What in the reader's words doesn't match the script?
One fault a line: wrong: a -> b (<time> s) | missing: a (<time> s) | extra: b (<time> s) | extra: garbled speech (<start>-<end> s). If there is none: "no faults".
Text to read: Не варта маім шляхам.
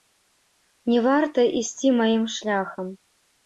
extra: ісці (1.6 s)